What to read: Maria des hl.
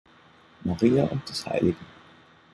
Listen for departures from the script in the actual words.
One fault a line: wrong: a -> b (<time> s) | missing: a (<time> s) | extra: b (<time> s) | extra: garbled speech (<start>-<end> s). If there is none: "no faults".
extra: und (1.0 s)